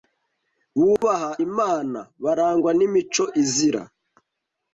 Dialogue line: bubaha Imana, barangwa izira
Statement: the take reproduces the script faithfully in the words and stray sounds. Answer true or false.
false